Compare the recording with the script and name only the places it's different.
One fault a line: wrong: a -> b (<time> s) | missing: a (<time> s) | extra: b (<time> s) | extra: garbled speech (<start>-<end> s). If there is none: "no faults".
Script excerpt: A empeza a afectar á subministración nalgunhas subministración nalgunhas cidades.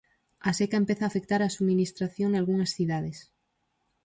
extra: seca (0.6 s)
missing: subministración nalgunhas (2.7 s)